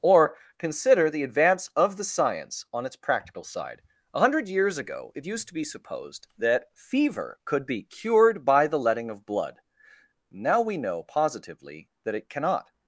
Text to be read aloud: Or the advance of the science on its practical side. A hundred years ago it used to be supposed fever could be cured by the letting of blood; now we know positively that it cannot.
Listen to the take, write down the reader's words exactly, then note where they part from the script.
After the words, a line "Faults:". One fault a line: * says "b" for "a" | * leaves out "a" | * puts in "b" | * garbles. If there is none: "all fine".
Or consider the advance of the science on its practical side. A hundred years ago it used to be supposed that fever could be cured by the letting of blood; now we know positively that it cannot.
Faults:
* puts in "consider"
* puts in "that"